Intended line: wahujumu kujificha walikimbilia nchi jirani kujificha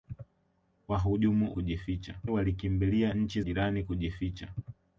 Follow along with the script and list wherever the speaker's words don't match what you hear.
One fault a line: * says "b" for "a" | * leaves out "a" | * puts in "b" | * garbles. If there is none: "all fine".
all fine